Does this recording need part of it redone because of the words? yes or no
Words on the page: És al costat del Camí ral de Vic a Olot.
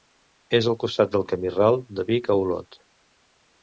no